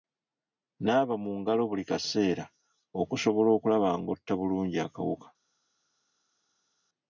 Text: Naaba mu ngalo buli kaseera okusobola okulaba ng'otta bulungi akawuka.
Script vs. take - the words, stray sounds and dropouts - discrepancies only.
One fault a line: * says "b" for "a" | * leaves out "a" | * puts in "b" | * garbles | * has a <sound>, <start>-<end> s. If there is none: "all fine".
all fine